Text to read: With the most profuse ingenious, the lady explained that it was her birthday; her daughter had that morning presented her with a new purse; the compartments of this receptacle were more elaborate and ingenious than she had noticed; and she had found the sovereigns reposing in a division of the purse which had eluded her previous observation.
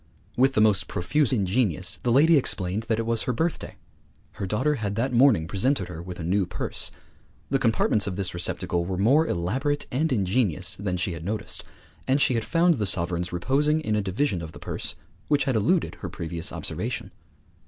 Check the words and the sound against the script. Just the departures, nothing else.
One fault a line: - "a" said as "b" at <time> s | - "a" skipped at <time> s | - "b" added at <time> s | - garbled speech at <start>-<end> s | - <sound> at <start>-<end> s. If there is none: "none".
none